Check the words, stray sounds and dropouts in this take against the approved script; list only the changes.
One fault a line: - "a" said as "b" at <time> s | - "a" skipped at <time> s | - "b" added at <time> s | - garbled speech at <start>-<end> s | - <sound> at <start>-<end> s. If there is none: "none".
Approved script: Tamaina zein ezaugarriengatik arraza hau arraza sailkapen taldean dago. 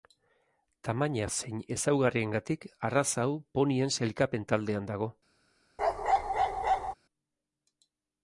- "arraza" said as "ponien" at 3.6 s
- bark at 5.8-6.9 s